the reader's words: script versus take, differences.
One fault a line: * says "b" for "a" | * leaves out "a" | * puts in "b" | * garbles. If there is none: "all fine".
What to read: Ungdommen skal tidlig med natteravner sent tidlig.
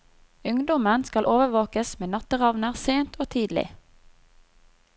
* says "overvåkes" for "tidlig"
* puts in "og"